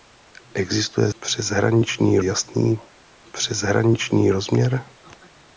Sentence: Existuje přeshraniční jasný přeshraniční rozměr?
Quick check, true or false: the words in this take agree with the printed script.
true